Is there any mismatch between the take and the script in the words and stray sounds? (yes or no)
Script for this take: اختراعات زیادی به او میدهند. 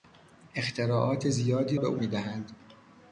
no